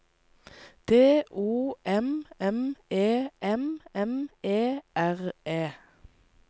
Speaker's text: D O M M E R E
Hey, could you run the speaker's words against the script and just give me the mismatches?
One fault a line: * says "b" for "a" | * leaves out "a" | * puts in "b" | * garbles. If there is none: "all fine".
* puts in "M M E"